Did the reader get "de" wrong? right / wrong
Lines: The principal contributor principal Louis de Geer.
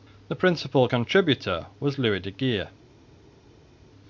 right